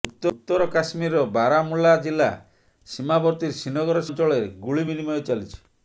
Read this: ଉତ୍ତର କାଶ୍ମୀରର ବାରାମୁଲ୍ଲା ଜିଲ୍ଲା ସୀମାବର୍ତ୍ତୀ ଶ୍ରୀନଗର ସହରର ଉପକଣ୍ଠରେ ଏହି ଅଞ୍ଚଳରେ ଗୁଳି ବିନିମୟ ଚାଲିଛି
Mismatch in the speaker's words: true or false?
true